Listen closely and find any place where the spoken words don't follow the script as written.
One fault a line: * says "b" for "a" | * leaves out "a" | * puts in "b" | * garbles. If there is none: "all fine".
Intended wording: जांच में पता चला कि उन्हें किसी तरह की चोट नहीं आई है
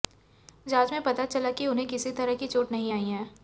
all fine